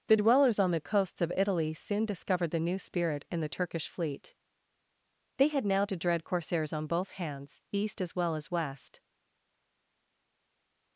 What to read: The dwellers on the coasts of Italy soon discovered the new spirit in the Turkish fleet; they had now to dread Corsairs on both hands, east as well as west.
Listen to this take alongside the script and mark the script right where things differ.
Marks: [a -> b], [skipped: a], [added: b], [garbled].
The dwellers on the coasts of Italy soon discovered the new spirit in the Turkish fleet; they had now to dread Corsairs on both hands, east as well as west.